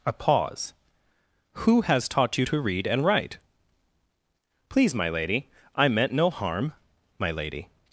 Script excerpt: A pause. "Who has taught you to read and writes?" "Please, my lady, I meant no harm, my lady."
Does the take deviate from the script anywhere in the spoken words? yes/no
yes